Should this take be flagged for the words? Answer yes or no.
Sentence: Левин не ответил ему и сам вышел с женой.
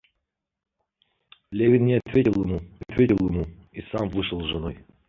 yes